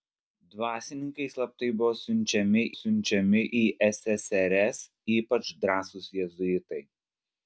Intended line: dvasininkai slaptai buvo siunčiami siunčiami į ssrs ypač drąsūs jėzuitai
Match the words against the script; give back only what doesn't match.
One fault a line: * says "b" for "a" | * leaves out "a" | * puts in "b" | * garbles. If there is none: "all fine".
all fine